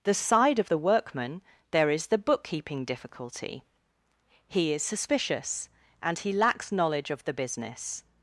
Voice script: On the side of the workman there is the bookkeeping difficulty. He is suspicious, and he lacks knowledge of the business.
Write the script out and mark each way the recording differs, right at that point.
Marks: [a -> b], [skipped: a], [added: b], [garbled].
[skipped: On] the side of the workman there is the bookkeeping difficulty. He is suspicious, and he lacks knowledge of the business.